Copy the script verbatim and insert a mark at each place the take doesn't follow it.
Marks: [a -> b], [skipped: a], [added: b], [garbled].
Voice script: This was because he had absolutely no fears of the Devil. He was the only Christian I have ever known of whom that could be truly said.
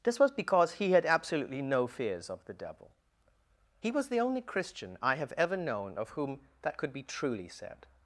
This was because he had absolutely no fears of the Devil. He was the only Christian I have ever known of whom that could be truly said.